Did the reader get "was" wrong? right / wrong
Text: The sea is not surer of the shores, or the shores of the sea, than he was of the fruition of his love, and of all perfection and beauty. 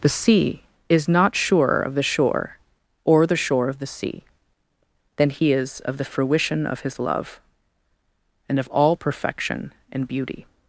wrong